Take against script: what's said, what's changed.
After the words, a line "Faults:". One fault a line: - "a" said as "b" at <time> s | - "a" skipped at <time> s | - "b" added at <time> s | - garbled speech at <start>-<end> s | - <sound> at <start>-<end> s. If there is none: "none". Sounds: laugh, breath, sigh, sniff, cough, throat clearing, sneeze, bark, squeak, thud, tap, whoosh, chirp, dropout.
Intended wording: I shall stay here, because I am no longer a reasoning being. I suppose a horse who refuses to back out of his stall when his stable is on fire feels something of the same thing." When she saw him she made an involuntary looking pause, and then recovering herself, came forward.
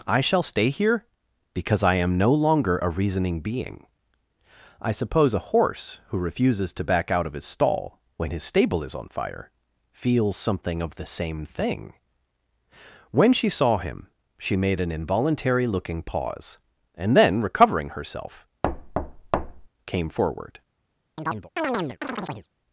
I shall stay here, because I am no longer a reasoning being. I suppose a horse who refuses to back out of his stall when his stable is on fire feels something of the same thing." When she saw him she made an involuntary looking pause, and then recovering herself, came forward.
Faults:
- thud at 18.6-19.7 s
- chirp at 21.2-22.5 s